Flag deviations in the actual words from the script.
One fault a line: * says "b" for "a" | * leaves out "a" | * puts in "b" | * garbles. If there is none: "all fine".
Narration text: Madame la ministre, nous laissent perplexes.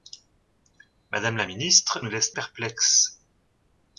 all fine